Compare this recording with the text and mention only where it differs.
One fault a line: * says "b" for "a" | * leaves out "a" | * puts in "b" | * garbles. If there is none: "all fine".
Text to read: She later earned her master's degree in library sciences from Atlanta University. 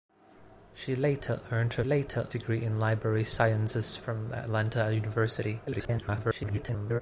* says "later" for "master's"
* garbles